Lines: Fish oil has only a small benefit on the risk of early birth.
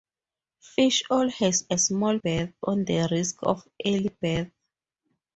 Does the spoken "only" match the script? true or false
false